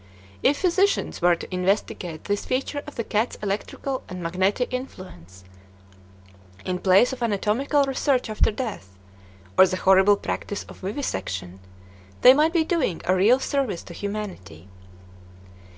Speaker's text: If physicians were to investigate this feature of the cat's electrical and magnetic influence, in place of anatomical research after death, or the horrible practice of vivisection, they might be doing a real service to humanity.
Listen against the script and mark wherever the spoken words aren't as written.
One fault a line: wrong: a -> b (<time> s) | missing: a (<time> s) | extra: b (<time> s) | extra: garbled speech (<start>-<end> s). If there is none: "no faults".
no faults